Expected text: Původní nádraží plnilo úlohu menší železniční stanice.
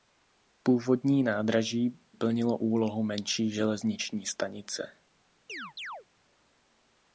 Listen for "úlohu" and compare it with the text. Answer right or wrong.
right